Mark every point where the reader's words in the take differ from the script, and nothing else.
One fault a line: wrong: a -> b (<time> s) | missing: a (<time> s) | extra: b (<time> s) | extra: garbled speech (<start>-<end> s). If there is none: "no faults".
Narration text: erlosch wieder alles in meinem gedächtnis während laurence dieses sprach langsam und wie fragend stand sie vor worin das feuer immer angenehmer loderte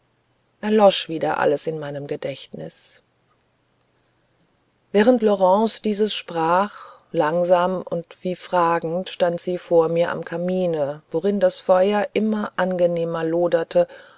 extra: mir am kamine (9.9 s)